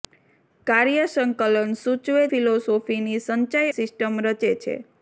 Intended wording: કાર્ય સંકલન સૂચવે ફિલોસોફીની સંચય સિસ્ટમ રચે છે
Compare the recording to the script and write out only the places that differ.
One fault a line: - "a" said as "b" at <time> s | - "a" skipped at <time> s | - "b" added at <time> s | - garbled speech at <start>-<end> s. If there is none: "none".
none